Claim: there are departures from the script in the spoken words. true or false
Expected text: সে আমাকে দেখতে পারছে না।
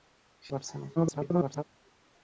true